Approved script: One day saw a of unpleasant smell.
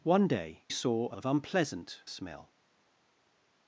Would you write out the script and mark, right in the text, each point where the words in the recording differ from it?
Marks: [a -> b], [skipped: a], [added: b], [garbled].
One day saw a of unpleasant smell.